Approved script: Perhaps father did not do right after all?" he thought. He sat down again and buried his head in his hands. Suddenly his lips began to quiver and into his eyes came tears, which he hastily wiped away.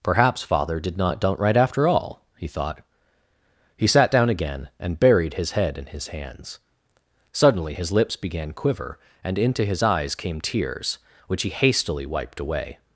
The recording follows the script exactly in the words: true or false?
false